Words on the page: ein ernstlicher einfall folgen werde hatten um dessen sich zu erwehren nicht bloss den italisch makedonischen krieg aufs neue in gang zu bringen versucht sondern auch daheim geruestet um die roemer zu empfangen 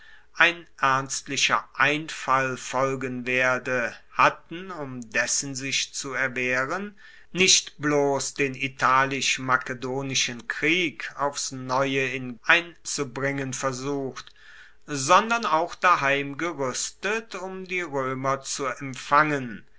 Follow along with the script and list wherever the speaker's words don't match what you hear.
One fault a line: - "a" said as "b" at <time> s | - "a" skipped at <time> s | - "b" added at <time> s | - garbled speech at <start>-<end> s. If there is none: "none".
- "gang" said as "ein" at 12.4 s